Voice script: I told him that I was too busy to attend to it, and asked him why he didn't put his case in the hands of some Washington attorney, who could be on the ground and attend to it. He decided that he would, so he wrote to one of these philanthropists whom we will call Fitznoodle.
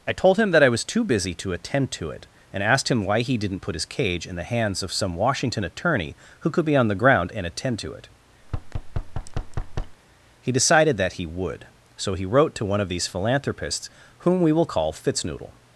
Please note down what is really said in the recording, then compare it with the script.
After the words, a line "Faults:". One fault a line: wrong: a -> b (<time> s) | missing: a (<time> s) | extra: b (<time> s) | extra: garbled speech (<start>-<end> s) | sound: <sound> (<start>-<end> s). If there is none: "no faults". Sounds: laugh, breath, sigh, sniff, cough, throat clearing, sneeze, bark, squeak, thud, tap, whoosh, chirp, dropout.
I told him that I was too busy to attend to it, and asked him why he didn't put his cage in the hands of some Washington attorney, who could be on the ground and attend to it. He decided that he would, so he wrote to one of these philanthropists whom we will call Fitznoodle.
Faults:
wrong: case -> cage (3.9 s)
sound: thud (8.4-10.0 s)